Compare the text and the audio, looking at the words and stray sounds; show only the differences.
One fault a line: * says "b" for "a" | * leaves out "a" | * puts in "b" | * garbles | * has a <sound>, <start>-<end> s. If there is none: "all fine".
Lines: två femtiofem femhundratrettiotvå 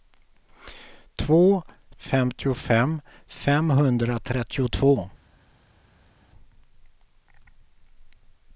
all fine